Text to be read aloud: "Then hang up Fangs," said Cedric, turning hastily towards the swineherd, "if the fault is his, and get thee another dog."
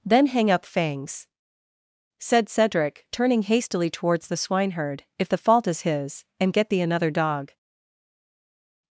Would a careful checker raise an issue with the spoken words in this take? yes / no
no